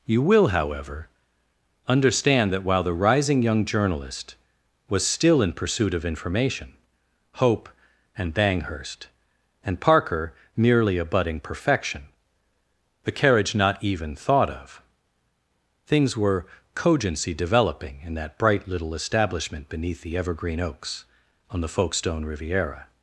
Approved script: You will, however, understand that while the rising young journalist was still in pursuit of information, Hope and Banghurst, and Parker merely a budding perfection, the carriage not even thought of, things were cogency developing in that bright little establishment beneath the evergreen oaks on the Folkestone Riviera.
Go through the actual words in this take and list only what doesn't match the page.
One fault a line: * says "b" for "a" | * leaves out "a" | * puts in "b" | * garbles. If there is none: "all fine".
all fine